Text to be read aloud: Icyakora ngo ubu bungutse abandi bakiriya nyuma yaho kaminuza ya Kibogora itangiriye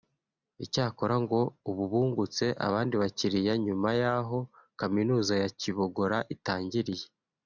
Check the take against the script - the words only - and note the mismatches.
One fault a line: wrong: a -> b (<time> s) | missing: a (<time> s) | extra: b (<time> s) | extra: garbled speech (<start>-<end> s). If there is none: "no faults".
no faults